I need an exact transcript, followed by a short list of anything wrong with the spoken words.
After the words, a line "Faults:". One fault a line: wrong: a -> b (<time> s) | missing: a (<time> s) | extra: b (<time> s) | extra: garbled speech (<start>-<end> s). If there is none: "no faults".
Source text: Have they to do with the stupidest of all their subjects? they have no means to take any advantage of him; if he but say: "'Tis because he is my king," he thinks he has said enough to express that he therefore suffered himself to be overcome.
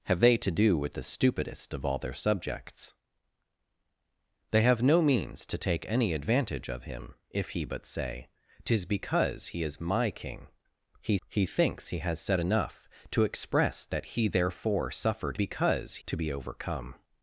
Have they to do with the stupidest of all their subjects? they have no means to take any advantage of him; if he but say: "'Tis because he is my king," he he thinks he has said enough to express that he therefore suffered because to be overcome.
Faults:
extra: he (11.3 s)
wrong: himself -> because (15.3 s)